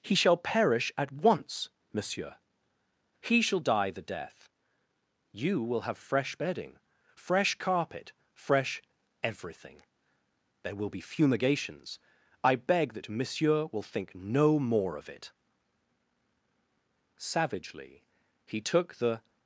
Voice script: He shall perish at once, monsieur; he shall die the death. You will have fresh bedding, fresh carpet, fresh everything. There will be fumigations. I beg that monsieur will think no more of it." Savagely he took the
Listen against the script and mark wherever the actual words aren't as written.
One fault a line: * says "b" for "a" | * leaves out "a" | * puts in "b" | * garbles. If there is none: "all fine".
all fine